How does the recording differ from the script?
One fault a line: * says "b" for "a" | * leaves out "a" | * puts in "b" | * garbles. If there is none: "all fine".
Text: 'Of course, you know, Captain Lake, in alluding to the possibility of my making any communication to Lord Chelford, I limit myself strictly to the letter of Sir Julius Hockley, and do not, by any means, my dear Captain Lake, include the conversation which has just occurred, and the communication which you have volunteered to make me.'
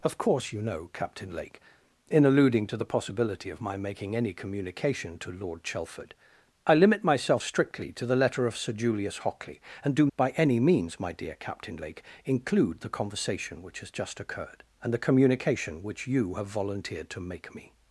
* leaves out "not"